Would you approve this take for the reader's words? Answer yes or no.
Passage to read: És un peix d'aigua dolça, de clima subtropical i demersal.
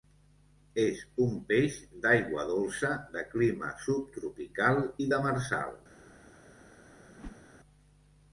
yes